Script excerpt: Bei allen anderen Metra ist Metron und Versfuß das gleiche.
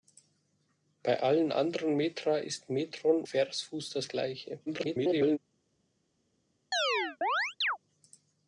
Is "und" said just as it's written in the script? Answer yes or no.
no